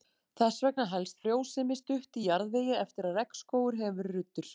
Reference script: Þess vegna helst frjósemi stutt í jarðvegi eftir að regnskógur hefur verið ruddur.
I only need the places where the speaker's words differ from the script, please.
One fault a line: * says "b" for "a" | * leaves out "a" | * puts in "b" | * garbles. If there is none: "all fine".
all fine